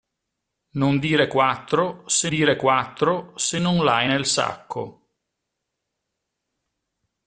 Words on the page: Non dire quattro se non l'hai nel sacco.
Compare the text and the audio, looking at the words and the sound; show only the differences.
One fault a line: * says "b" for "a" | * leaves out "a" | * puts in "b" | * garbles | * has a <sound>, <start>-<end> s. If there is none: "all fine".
* puts in "dire quattro se"